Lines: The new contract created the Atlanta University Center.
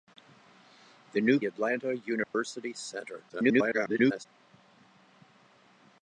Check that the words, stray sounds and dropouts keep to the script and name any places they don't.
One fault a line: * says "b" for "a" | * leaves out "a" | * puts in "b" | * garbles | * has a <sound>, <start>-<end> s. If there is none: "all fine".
* leaves out "contract created the"
* has a dropout, 2.2-2.3 s
* garbles